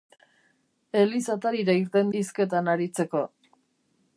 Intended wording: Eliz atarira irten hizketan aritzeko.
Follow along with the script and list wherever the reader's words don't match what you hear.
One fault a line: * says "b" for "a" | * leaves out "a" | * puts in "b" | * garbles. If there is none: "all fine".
all fine